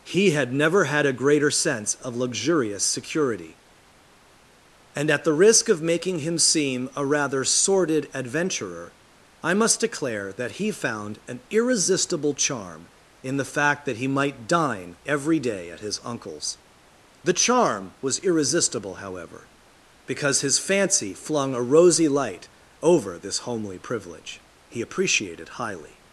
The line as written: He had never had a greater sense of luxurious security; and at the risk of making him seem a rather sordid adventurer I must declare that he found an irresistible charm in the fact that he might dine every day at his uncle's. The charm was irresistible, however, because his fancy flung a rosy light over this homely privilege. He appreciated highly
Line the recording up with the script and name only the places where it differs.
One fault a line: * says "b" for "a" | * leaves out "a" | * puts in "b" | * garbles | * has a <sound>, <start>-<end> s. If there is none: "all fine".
all fine